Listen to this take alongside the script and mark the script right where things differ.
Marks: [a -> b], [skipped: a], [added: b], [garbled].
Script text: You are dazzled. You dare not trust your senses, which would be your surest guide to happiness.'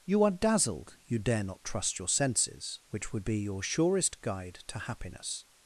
You are dazzled. You dare not trust your senses, which would be your surest guide to happiness.'